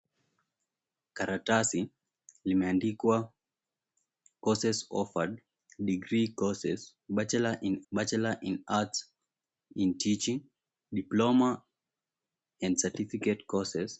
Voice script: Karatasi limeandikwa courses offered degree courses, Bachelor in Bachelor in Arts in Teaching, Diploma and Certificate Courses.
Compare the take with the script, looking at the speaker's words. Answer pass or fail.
pass